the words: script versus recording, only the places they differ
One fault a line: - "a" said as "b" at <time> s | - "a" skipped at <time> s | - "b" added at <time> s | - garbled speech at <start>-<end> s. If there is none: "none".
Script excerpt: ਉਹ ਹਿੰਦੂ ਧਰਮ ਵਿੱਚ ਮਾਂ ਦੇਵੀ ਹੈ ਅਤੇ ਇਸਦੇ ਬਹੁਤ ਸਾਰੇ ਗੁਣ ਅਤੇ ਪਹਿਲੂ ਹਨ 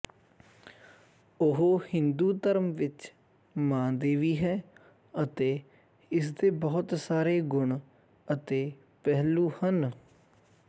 none